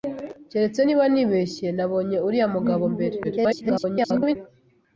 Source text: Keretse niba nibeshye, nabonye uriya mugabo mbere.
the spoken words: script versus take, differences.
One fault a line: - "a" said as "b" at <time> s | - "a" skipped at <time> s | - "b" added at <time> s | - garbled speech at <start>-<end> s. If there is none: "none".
- garbled speech at 3.2-4.4 s